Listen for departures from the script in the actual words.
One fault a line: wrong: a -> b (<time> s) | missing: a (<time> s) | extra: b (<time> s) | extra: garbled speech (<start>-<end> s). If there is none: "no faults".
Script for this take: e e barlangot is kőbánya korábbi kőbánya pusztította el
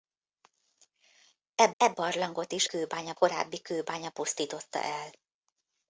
no faults